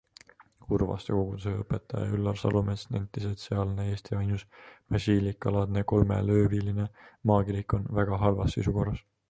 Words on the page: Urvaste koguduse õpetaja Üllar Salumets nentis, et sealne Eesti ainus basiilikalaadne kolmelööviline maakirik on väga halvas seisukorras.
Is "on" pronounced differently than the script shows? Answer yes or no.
no